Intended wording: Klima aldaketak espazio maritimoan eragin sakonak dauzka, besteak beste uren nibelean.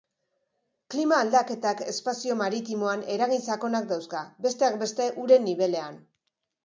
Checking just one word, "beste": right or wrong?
right